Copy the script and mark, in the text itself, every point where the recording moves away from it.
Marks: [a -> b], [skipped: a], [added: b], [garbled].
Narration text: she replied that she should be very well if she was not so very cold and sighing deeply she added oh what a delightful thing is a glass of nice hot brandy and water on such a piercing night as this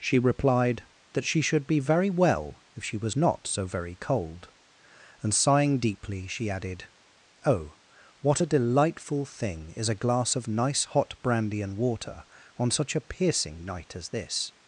she replied that she should be very well if she was not so very cold and sighing deeply she added oh what a delightful thing is a glass of nice hot brandy and water on such a piercing night as this